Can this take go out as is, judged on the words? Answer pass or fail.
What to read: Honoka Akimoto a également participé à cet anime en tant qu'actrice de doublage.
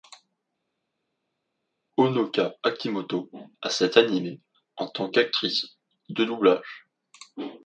fail